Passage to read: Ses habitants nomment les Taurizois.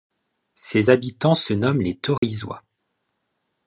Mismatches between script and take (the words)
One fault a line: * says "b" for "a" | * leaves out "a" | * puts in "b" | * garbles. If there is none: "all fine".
* puts in "se"